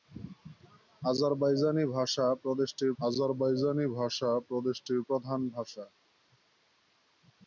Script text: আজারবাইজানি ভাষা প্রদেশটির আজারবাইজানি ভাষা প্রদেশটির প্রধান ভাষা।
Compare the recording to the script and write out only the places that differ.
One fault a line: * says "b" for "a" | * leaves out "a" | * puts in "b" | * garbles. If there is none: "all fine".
all fine